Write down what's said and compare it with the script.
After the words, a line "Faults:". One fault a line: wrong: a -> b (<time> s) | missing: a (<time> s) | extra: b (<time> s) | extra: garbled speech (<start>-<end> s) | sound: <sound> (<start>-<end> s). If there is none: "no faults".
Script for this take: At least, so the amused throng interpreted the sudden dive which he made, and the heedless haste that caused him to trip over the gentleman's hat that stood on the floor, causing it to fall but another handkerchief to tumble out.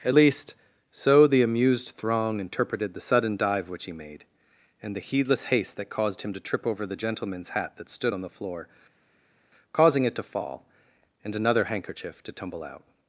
At least, so the amused throng interpreted the sudden dive which he made, and the heedless haste that caused him to trip over the gentleman's hat that stood on the floor, causing it to fall and another handkerchief to tumble out.
Faults:
wrong: but -> and (11.2 s)